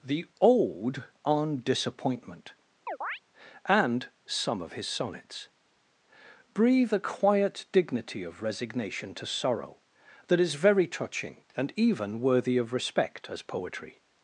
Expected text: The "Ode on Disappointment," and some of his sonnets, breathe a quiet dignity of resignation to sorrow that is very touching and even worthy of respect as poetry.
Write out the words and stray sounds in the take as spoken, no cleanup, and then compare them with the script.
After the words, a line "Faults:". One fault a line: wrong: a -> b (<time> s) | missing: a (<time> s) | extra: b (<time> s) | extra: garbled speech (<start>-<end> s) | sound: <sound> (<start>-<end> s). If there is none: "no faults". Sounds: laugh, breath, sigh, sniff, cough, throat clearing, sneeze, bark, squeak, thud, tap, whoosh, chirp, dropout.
The "Ode on Disappointment," and some of his sonnets, breathe a quiet dignity of resignation to sorrow that is very touching and even worthy of respect as poetry.
Faults:
sound: chirp (2.9-3.2 s)